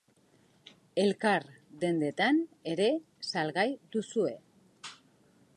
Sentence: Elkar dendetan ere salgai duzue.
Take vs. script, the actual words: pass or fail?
pass